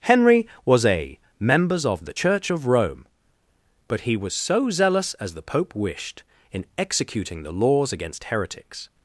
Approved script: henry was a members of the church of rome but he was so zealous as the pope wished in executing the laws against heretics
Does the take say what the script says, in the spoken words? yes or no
yes